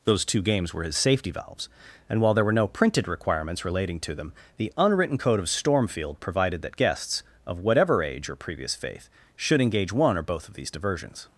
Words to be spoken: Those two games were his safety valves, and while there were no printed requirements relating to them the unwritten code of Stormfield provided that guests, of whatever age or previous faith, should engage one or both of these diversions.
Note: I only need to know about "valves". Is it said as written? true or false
true